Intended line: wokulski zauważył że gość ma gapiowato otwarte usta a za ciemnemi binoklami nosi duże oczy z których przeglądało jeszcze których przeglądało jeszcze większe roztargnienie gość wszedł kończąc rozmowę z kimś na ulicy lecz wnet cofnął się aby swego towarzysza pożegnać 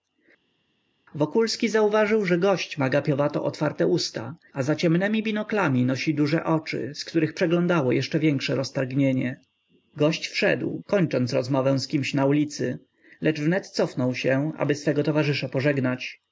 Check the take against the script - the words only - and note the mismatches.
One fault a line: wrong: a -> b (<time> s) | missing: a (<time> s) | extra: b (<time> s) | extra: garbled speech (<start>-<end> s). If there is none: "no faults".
missing: których przeglądało jeszcze (8.2 s)